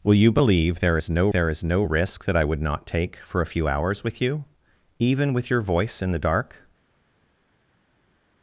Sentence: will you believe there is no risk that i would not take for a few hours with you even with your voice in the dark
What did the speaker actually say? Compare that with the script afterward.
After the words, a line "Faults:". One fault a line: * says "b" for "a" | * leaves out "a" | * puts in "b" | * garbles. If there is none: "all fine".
will you believe there is no there is no risk that i would not take for a few hours with you even with your voice in the dark
Faults:
* puts in "there is no"